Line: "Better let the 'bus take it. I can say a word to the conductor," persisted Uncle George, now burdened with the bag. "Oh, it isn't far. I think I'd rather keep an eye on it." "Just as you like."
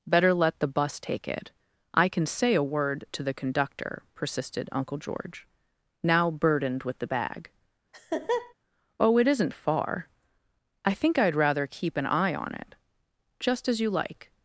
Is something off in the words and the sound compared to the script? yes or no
yes